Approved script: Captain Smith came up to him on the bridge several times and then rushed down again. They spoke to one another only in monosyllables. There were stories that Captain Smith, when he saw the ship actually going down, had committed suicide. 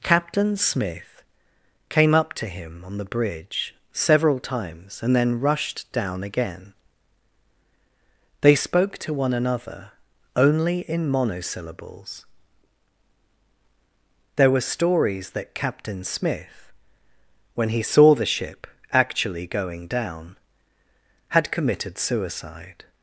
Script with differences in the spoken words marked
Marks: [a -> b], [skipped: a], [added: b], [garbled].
Captain Smith came up to him on the bridge several times and then rushed down again. They spoke to one another only in monosyllables. There were stories that Captain Smith, when he saw the ship actually going down, had committed suicide.